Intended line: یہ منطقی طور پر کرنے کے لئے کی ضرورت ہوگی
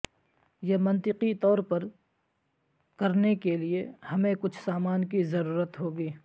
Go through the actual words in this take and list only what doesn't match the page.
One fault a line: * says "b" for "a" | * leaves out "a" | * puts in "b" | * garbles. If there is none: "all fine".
* puts in "ہمیں کچھ سامان"